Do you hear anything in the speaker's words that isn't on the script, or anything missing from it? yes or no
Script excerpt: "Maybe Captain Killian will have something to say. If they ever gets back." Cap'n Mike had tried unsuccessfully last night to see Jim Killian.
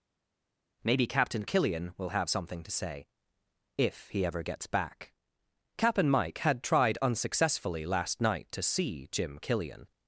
yes